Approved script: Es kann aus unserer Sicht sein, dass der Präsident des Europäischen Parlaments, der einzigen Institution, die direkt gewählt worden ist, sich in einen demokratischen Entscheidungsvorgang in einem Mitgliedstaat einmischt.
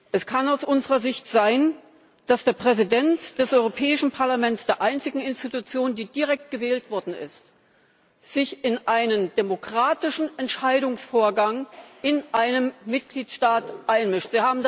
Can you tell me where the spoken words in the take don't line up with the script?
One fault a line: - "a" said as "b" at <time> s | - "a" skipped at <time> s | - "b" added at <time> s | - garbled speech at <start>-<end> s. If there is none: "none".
none